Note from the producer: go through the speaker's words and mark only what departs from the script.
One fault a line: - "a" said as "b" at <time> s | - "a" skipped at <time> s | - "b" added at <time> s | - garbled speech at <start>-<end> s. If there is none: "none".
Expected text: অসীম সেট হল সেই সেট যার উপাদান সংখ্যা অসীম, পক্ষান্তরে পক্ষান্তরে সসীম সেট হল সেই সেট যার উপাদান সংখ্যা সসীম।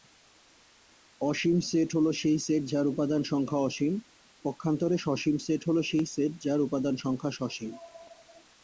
- "পক্ষান্তরে" skipped at 5.0 s